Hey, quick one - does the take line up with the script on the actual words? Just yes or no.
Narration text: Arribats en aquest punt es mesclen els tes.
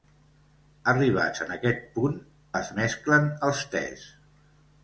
yes